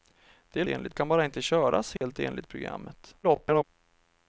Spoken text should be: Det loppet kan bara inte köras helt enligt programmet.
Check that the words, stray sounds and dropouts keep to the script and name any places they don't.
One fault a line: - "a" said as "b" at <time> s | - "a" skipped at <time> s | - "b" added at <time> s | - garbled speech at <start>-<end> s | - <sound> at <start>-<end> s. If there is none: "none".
- "loppet" said as "enligt" at 0.7 s
- dropout at 2.0-2.0 s
- garbled speech at 3.2-3.6 s